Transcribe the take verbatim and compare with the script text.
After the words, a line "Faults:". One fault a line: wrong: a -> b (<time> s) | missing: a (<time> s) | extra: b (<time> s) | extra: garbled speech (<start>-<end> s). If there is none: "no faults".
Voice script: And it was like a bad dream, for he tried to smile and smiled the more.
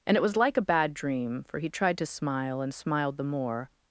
And it was like a bad dream, for he tried to smile and smiled the more.
Faults:
no faults